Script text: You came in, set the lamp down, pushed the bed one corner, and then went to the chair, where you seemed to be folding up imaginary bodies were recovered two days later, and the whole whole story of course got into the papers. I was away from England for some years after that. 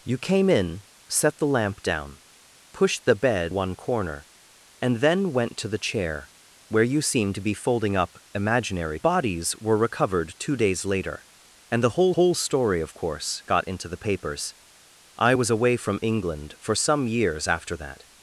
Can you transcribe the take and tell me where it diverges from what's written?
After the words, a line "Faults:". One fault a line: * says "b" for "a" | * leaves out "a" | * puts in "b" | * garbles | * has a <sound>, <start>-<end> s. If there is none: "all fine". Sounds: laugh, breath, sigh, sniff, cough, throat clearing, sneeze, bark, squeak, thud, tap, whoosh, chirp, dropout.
You came in, set the lamp down, pushed the bed one corner, and then went to the chair, where you seemed to be folding up imaginary bodies were recovered two days later, and the whole whole story of course got into the papers. I was away from England for some years after that.
Faults:
all fine